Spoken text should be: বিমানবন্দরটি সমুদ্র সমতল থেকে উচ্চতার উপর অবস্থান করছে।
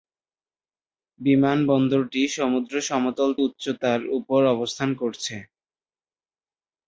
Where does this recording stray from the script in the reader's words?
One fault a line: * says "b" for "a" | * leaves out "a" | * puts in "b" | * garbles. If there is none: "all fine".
* leaves out "থেকে"